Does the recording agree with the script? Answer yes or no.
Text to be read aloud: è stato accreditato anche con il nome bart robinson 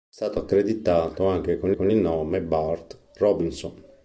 no